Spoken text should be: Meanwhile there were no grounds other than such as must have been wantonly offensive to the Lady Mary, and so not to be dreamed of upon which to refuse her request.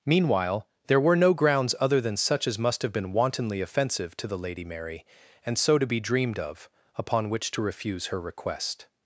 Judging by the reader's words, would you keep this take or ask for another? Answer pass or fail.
fail